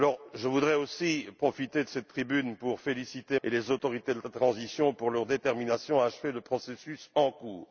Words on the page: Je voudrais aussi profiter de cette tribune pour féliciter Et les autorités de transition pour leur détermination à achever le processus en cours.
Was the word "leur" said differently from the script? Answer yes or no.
no